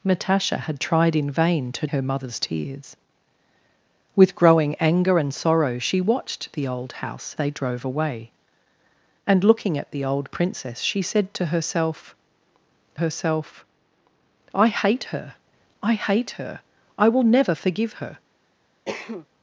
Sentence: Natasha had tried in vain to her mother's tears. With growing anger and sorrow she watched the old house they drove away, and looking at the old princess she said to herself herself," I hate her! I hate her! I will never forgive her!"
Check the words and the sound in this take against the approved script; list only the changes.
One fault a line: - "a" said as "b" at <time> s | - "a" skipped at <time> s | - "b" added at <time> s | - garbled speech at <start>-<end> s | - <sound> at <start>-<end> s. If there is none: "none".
- cough at 18.9-19.3 s